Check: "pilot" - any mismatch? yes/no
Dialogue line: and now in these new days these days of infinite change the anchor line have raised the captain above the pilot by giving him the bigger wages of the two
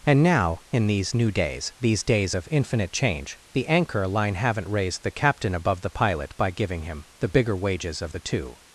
no